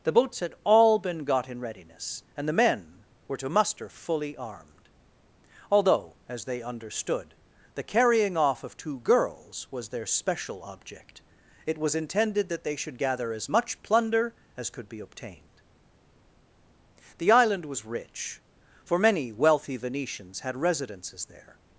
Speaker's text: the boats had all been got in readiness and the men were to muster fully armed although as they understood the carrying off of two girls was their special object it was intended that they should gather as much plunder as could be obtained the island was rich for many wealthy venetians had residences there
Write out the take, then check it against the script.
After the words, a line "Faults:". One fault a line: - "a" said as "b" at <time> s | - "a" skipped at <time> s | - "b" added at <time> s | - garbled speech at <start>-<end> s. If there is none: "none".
the boats had all been got in readiness and the men were to muster fully armed although as they understood the carrying off of two girls was their special object it was intended that they should gather as much plunder as could be obtained the island was rich for many wealthy venetians had residences there
Faults:
none